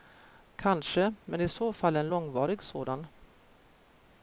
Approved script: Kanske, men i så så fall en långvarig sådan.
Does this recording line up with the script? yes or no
no